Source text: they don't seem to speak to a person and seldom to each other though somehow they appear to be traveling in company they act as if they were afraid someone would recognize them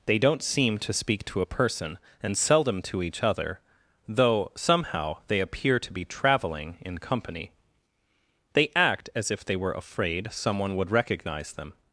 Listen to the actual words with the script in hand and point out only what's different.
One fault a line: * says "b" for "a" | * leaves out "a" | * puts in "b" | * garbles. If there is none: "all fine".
all fine